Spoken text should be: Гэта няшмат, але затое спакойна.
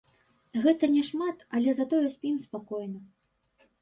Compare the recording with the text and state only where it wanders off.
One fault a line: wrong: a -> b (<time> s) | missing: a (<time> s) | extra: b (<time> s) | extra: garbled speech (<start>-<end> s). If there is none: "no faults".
extra: спім (2.2 s)